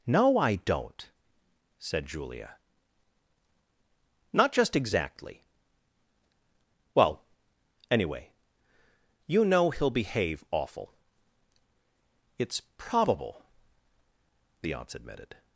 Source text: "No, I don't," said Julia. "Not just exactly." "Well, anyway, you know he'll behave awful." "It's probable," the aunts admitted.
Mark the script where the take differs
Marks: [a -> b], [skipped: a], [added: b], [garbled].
"No, I don't," said Julia. "Not just exactly." "Well, anyway, you know he'll behave awful." "It's probable," the aunts admitted.